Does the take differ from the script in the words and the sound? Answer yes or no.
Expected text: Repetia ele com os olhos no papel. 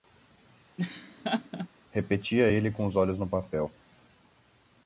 yes